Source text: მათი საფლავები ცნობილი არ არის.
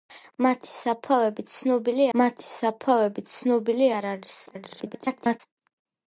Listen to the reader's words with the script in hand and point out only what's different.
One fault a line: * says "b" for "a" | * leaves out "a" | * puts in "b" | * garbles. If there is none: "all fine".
* puts in "მათი საფლავები ცნობილი"
* garbles